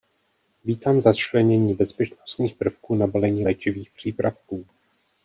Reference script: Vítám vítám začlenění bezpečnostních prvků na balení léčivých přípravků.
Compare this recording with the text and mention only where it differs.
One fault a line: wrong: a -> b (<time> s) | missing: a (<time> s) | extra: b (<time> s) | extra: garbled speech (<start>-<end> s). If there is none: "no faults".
missing: vítám (1.0 s)